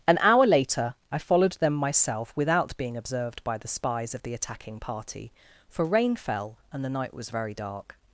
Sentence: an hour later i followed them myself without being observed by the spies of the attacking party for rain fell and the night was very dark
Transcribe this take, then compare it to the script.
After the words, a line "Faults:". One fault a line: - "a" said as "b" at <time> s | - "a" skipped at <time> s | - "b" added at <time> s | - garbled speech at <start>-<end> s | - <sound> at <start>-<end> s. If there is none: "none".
an hour later i followed them myself without being observed by the spies of the attacking party for rain fell and the night was very dark
Faults:
none